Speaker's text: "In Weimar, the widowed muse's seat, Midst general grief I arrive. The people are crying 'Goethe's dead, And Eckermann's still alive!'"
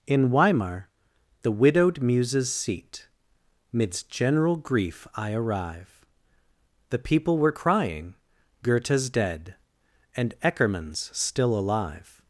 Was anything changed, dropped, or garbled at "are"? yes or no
yes